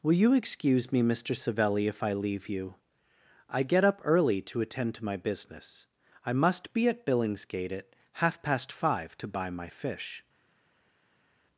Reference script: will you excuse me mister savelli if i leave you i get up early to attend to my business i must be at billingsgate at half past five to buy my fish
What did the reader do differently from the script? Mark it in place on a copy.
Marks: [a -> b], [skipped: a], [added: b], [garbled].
will you excuse me mister savelli if i leave you i get up early to attend to my business i must be at billingsgate at half past five to buy my fish